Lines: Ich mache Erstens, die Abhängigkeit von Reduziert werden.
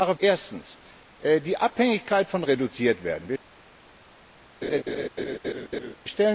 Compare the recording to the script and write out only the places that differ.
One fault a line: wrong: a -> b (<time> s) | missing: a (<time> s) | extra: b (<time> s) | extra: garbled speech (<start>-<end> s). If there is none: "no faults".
no faults